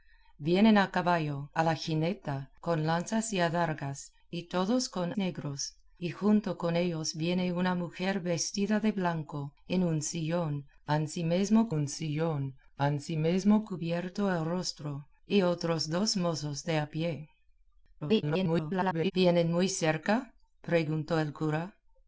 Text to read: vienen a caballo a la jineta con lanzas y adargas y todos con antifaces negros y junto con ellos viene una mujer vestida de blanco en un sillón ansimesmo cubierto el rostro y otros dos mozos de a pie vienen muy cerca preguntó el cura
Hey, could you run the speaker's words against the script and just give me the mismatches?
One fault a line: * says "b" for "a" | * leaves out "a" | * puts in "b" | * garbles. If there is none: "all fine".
* leaves out "antifaces"
* puts in "un sillón ansimesmo"
* garbles